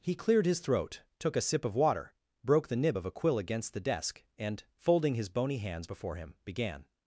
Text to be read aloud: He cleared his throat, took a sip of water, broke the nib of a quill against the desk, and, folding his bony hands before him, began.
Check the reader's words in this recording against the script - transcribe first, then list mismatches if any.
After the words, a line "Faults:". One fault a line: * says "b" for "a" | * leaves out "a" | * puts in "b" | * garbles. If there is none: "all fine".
He cleared his throat, took a sip of water, broke the nib of a quill against the desk, and, folding his bony hands before him, began.
Faults:
all fine